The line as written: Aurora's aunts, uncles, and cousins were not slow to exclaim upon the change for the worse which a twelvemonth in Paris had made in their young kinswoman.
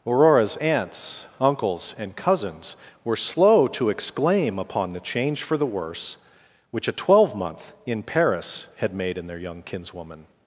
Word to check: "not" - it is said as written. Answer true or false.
false